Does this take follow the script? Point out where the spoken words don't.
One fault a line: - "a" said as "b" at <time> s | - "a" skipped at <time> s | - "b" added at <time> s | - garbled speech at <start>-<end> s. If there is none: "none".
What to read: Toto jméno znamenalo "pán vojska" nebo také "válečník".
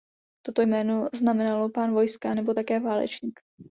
none